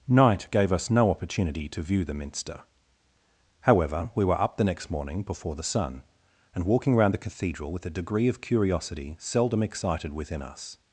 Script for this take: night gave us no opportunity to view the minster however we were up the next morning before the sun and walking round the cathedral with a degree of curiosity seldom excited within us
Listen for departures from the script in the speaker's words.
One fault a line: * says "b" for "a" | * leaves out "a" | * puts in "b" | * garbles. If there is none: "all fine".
all fine